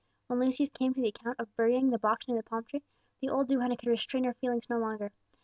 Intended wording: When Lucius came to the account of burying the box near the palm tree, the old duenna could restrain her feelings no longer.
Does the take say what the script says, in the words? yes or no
yes